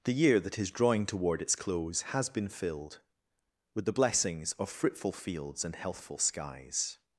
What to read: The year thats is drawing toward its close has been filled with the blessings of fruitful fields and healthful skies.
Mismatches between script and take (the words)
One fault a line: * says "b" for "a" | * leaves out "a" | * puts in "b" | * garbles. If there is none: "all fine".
* says "that" for "thats"